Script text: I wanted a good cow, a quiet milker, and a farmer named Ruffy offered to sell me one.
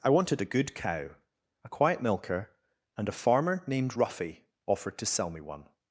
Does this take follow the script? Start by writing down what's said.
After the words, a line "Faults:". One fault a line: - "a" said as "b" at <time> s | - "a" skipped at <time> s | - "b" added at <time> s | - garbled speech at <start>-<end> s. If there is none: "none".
I wanted a good cow, a quiet milker, and a farmer named Ruffy offered to sell me one.
Faults:
none